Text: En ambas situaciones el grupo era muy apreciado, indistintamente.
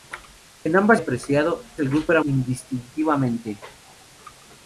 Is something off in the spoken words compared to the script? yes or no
yes